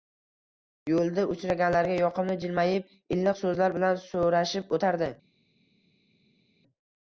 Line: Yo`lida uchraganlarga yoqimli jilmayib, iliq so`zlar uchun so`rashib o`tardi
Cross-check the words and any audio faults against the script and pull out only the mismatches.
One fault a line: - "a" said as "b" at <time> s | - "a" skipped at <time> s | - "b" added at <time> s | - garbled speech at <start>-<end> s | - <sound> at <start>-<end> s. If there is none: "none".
- "uchun" said as "bilan" at 3.8 s